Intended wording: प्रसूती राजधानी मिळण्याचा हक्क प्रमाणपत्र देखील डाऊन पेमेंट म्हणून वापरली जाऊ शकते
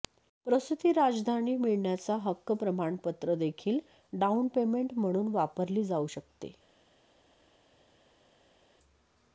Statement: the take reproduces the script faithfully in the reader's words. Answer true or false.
true